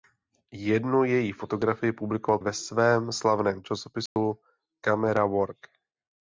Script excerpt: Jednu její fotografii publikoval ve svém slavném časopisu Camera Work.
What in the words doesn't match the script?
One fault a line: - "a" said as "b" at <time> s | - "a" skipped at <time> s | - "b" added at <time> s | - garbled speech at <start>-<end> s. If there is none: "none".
none